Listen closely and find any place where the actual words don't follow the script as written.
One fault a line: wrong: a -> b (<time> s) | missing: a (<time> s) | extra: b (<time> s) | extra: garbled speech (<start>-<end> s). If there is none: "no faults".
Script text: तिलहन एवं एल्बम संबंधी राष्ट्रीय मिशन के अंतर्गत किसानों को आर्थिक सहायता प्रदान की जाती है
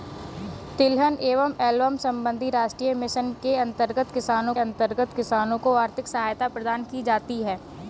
extra: अंतर्गत किसानों (4.6 s)